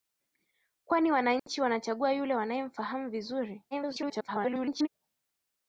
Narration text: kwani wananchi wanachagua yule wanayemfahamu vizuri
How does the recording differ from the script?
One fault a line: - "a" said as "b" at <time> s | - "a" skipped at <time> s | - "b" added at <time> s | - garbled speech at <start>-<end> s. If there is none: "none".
- garbled speech at 3.7-4.9 s